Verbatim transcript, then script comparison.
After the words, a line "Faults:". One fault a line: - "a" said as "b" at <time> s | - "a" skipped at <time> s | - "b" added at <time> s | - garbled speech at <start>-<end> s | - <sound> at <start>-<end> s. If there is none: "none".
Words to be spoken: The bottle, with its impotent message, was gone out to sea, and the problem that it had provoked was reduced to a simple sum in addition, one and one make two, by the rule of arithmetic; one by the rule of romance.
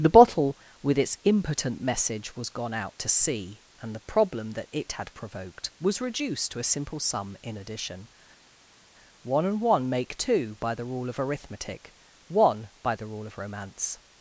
The bottle, with its impotent message, was gone out to sea, and the problem that it had provoked was reduced to a simple sum in addition, one and one make two, by the rule of arithmetic; one by the rule of romance.
Faults:
none